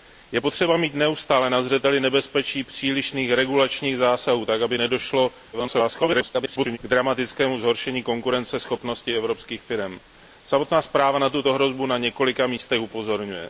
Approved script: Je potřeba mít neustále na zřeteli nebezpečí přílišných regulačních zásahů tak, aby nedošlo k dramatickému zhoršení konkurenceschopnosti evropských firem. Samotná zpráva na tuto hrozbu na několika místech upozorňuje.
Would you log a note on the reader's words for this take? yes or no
yes